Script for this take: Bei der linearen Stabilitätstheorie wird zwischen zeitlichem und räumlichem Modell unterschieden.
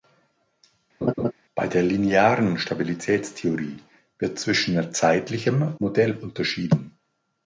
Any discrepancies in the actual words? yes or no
yes